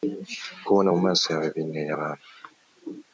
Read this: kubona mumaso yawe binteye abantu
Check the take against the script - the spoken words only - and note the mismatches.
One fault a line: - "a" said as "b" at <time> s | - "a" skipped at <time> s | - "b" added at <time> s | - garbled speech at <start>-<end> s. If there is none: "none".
none